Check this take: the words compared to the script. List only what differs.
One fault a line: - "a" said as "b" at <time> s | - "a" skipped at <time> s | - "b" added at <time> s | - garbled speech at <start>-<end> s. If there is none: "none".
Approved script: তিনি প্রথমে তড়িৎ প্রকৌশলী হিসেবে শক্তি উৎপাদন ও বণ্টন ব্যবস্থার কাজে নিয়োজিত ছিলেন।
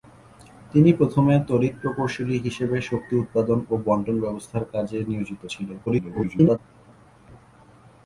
- garbled speech at 5.9-6.6 s